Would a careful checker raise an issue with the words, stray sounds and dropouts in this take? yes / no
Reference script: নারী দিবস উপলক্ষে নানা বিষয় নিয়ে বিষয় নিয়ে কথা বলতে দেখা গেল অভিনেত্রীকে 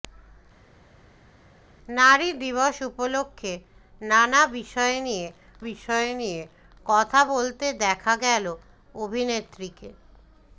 no